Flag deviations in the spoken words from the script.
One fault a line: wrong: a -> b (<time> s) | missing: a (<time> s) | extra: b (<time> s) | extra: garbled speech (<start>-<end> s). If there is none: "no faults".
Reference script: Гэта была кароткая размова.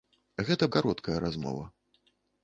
missing: была (0.7 s)